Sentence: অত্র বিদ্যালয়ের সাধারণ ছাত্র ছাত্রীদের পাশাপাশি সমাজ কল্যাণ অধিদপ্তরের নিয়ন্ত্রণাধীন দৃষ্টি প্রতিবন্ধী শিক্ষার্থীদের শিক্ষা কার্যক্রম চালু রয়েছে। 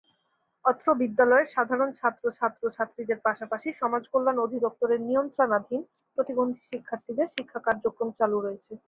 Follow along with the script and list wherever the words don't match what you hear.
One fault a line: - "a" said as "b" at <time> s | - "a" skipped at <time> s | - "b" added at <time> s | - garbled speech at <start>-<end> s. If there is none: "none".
- "ছাত্র" added at 2.4 s
- "দৃষ্টি" skipped at 5.8 s